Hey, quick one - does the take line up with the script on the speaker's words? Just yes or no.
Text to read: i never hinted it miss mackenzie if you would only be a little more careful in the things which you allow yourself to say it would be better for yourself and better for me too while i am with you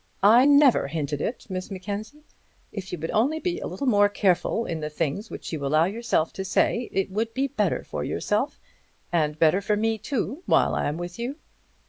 yes